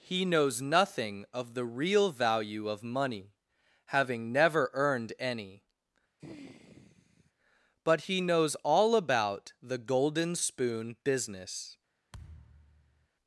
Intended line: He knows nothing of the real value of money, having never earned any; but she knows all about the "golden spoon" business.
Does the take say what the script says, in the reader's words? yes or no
no